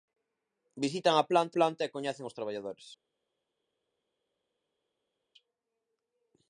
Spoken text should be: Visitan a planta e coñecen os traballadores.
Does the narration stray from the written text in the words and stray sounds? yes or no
yes